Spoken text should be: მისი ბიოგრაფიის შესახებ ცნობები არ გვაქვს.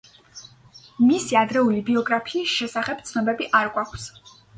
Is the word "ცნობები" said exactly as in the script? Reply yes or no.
yes